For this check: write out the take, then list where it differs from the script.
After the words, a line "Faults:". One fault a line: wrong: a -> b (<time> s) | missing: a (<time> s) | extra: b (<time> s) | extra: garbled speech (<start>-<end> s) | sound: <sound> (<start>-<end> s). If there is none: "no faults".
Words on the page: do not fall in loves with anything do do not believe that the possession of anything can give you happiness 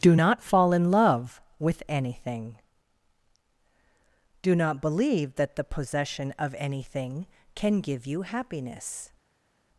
do not fall in love with anything do not believe that the possession of anything can give you happiness
Faults:
wrong: loves -> love (0.9 s)
missing: do (4.5 s)